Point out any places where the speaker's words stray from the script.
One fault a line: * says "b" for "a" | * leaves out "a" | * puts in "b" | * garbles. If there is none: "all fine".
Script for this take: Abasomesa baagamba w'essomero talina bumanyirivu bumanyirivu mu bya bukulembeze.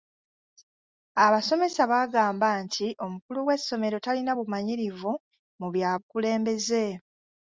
* puts in "nti omukulu"
* leaves out "bumanyirivu"